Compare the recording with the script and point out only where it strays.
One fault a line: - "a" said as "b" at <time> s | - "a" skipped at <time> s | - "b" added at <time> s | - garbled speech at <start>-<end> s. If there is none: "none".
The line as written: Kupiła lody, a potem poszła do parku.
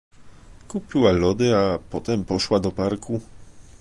none